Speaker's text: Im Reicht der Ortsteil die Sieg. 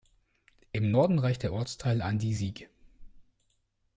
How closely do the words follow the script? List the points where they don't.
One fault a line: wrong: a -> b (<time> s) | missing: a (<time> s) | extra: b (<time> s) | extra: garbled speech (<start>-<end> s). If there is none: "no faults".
extra: Norden (0.9 s)
extra: an (2.0 s)